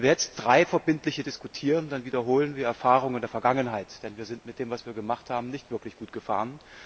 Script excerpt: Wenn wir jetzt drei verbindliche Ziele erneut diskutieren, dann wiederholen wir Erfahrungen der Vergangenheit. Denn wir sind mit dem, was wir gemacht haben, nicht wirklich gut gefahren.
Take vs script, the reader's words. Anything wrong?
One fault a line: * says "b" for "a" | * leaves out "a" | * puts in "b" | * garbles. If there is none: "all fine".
* leaves out "Ziele erneut"